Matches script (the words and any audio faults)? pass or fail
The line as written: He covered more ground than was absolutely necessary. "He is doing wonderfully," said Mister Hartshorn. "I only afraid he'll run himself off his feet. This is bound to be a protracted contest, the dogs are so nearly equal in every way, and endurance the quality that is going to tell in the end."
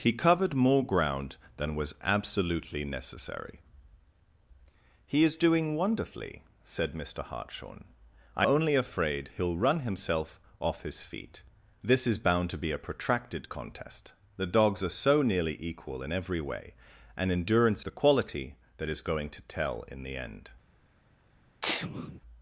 fail